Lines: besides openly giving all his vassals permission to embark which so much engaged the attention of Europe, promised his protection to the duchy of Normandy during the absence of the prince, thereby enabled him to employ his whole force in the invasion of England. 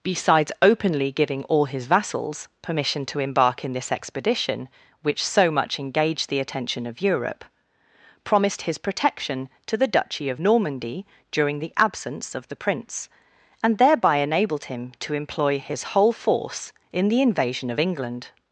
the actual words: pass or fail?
fail